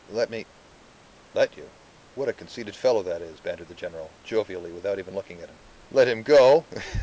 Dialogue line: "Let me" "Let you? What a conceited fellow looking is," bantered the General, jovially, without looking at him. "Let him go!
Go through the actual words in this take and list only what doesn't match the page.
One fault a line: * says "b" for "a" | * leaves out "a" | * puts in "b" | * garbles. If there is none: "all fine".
* says "that" for "looking"
* puts in "even"